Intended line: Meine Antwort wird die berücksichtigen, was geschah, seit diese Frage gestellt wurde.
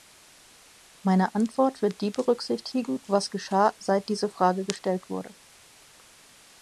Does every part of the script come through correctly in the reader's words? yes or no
yes